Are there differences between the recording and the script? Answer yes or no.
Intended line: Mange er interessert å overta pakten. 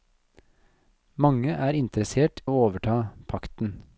no